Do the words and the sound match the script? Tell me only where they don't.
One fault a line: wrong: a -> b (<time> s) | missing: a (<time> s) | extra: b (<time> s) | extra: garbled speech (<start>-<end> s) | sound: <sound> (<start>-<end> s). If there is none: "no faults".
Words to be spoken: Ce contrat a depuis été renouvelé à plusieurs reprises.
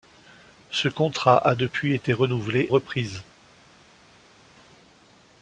missing: à plusieurs (2.7 s)